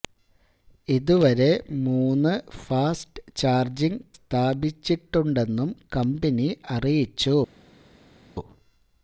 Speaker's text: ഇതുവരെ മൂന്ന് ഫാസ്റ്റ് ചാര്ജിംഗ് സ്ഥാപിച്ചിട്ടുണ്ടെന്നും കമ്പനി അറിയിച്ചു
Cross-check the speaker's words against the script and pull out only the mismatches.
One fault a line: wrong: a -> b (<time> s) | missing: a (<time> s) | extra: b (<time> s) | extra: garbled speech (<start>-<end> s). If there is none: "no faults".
no faults